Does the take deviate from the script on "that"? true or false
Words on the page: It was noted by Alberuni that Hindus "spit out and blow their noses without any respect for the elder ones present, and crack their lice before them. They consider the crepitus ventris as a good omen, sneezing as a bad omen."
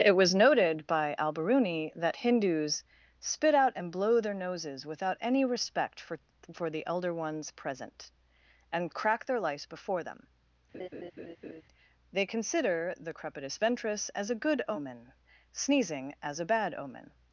false